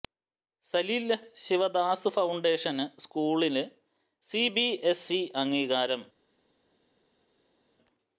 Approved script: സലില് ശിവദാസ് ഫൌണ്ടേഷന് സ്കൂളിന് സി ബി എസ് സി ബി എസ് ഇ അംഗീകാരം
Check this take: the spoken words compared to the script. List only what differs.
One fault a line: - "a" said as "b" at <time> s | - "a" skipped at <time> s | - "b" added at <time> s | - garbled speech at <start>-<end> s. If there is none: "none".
- "സി ബി എസ്" skipped at 5.1 s